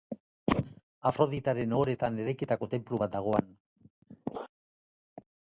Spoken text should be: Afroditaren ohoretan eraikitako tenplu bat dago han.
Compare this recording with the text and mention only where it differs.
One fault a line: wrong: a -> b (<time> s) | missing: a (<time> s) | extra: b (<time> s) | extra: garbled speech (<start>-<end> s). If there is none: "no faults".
no faults